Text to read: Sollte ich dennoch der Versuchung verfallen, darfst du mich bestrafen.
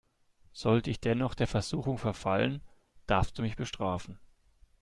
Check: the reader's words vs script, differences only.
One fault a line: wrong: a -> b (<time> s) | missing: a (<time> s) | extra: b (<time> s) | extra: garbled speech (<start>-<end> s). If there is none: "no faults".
no faults